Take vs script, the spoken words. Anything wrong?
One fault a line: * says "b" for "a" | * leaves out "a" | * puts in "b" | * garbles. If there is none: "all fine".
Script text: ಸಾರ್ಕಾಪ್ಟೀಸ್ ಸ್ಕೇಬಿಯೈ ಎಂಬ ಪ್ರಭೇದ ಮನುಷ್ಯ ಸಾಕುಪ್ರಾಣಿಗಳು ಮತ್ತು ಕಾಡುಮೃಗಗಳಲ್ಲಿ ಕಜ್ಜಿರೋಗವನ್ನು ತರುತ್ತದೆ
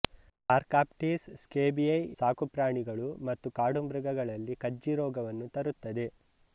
* leaves out "ಎಂಬ ಪ್ರಭೇದ ಮನುಷ್ಯ"